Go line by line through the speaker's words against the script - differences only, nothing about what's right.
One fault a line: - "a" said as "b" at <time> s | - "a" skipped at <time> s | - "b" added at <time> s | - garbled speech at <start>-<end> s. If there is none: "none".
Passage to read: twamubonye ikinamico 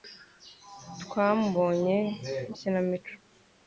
none